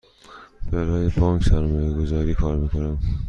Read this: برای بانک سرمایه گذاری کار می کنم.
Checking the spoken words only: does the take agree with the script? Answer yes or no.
yes